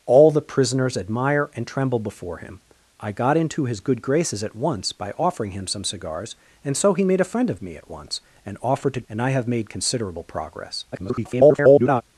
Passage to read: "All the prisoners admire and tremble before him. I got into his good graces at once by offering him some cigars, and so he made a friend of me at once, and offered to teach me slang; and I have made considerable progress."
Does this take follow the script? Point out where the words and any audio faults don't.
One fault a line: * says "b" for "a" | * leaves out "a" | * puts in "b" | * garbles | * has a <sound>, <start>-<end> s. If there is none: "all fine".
* leaves out "teach me slang"
* garbles